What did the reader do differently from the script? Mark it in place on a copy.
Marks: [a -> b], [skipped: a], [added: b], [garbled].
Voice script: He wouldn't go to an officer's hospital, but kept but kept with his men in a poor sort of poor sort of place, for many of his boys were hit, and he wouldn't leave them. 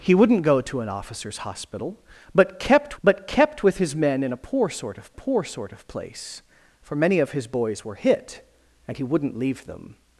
He wouldn't go to an officer's hospital, but kept but kept with his men in a poor sort of poor sort of place, for many of his boys were hit, and he wouldn't leave them.